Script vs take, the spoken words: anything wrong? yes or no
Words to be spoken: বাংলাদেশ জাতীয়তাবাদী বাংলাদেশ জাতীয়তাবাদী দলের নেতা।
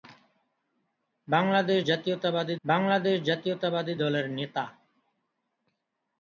no